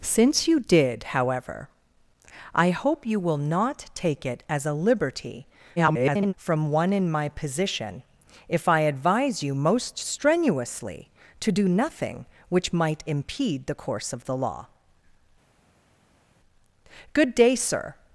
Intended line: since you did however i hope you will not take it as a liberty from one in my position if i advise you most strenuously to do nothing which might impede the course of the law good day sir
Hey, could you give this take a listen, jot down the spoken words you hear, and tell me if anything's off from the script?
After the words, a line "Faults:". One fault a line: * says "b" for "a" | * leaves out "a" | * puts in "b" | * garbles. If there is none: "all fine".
since you did however i hope you will not take it as a liberty [garbled] from one in my position if i advise you most strenuously to do nothing which might impede the course of the law good day sir
Faults:
* garbles